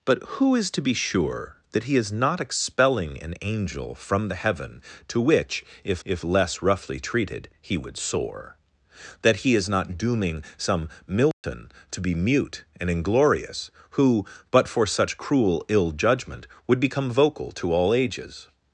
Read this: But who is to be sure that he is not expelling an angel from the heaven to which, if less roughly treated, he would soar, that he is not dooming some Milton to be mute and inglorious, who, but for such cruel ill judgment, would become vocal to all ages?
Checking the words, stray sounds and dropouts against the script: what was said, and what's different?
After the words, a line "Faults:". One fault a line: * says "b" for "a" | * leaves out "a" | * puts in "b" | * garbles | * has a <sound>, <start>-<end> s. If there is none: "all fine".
But who is to be sure that he is not expelling an angel from the heaven to which, if if less roughly treated, he would soar, that he is not dooming some Milton to be mute and inglorious, who, but for such cruel ill judgment, would become vocal to all ages?
Faults:
* puts in "if"
* has a dropout, 11.3-11.4 s